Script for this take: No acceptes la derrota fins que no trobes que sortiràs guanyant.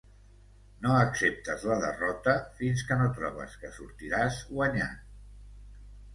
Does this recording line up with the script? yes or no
yes